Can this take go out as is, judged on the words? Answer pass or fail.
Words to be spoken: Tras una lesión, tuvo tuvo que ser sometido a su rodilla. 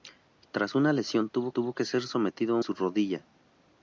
pass